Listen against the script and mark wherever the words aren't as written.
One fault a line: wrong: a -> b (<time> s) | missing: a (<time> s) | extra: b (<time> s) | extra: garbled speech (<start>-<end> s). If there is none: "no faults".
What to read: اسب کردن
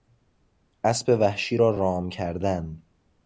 extra: وحشی را رام (1.2 s)